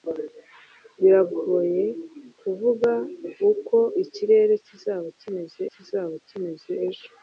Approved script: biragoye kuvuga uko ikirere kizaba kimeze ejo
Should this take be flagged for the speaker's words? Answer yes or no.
yes